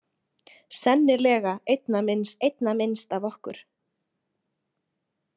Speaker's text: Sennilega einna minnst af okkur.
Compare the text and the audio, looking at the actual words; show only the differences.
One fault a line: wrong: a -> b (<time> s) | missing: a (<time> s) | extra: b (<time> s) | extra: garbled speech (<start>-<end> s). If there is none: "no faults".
extra: einna minnst (2.5 s)